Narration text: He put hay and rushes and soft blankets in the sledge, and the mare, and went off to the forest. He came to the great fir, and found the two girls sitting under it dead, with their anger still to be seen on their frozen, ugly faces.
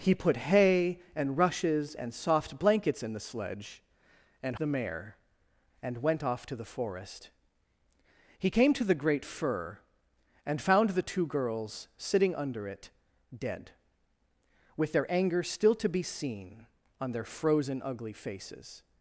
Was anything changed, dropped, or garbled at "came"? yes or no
no